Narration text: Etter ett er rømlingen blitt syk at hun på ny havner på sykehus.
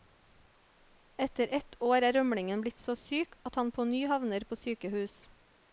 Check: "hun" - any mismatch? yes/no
yes